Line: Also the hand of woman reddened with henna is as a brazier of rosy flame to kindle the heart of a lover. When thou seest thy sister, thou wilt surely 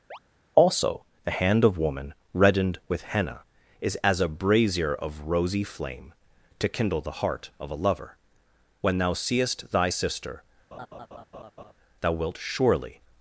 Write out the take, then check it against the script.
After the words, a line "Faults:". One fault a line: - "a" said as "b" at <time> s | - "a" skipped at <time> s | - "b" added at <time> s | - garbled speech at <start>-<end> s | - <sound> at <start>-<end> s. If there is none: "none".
Also the hand of woman reddened with henna is as a brazier of rosy flame to kindle the heart of a lover. When thou seest thy sister, thou wilt surely
Faults:
- chirp at 0.1-0.2 s
- laugh at 10.7-11.7 s